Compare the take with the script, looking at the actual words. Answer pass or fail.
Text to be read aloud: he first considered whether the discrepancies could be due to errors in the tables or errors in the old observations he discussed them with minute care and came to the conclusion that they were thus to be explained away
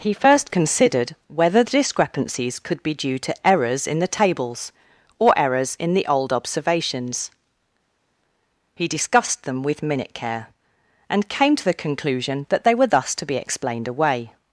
pass